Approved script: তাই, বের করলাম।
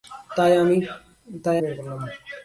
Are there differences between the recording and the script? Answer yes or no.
no